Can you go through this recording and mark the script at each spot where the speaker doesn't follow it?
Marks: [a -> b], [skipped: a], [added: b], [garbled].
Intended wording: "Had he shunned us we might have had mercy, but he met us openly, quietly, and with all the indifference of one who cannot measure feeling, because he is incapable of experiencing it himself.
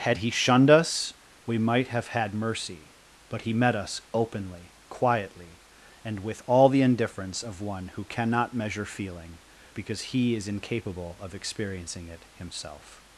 "Had he shunned us we might have had mercy, but he met us openly, quietly, and with all the indifference of one who cannot measure feeling, because he is incapable of experiencing it himself.